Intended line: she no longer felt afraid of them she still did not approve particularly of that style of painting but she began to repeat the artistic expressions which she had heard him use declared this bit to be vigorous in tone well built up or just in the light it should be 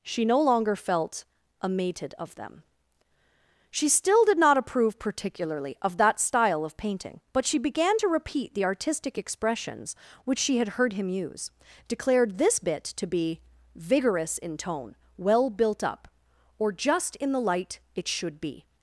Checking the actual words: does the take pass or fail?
fail